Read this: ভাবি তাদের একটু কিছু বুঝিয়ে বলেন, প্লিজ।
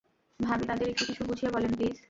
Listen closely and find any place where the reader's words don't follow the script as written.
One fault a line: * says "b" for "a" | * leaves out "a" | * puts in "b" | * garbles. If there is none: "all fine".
all fine